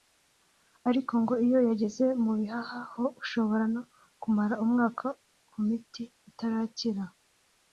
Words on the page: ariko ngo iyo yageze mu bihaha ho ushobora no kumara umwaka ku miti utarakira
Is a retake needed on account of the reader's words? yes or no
no